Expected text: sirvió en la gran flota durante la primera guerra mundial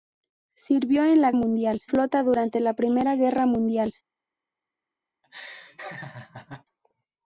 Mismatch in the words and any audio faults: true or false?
true